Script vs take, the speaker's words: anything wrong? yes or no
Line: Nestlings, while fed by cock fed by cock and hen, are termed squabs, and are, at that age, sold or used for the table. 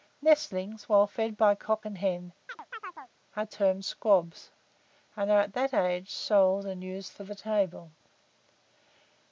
yes